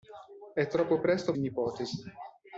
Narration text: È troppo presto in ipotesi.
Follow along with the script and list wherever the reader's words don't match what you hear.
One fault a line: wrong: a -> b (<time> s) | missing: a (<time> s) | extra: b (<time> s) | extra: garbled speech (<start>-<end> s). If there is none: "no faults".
no faults